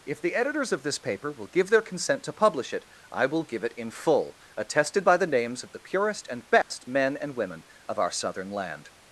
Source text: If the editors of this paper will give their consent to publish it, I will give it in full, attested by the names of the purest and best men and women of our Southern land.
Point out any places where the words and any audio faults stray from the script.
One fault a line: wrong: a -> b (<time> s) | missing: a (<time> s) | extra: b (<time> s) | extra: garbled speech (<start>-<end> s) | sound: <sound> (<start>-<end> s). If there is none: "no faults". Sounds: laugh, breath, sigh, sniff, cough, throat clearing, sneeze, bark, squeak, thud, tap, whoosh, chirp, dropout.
sound: dropout (6.6-6.7 s)